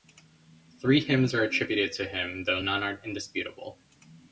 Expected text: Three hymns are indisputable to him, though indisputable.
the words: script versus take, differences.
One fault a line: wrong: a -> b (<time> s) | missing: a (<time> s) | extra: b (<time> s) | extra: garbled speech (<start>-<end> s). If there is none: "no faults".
wrong: indisputable -> attributed (1.4 s)
extra: none are (2.6 s)